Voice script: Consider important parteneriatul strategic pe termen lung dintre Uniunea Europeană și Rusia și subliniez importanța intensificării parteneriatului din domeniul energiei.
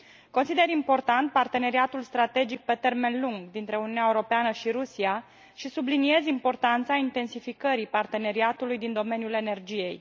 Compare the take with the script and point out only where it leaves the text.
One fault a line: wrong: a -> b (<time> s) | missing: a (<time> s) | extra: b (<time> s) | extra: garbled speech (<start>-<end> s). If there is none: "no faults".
no faults